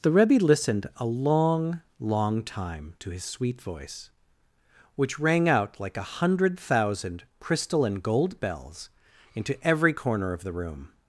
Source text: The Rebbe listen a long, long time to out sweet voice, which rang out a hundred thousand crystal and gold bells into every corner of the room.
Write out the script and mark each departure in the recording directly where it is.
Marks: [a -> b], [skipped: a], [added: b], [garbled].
The Rebbe [listen -> listened] a long, long time to [out -> his] sweet voice, which rang out [added: like] a hundred thousand crystal and gold bells into every corner of the room.